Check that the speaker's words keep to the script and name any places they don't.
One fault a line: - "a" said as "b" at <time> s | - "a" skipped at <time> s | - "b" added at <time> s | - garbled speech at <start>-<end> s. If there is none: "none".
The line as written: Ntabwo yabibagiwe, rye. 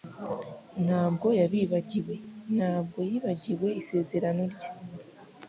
- "ntabwo yibagiwe isezerano" added at 2.5 s